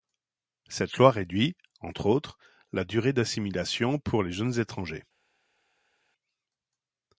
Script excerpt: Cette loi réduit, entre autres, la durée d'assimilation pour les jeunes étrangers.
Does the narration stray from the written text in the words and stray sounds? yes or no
no